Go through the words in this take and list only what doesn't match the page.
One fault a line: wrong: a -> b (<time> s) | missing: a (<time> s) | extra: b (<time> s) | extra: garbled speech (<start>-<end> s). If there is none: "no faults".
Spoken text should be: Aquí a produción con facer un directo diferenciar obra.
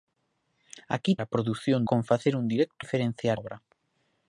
no faults